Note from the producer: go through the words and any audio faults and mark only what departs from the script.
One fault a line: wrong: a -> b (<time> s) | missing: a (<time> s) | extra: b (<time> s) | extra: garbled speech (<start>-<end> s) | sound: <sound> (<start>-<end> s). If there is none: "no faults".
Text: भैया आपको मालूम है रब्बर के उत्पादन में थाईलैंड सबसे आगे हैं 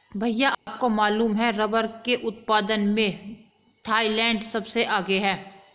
sound: dropout (0.5-0.7 s)